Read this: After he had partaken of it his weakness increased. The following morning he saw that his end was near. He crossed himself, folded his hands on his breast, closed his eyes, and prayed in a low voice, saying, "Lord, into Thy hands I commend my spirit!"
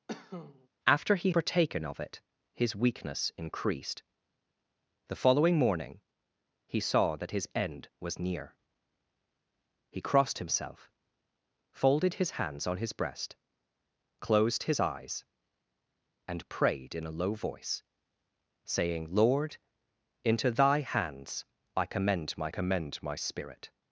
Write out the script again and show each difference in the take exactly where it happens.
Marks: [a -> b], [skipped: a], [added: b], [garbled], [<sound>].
[cough] After he [skipped: had] partaken of it his weakness increased. The following morning he saw that his end was near. He crossed himself, folded his hands on his breast, closed his eyes, and prayed in a low voice, saying, "Lord, into Thy hands I commend my [added: commend my] spirit!"